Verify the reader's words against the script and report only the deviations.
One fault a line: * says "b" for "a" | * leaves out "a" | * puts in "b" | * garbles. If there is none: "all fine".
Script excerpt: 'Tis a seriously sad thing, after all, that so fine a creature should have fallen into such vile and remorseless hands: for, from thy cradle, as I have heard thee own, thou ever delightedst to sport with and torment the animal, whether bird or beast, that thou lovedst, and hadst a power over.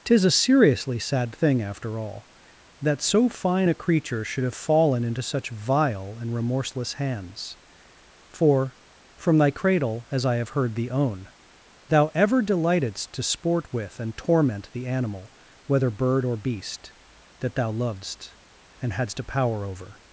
all fine